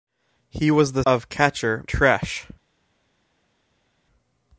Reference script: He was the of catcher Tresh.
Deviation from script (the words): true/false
false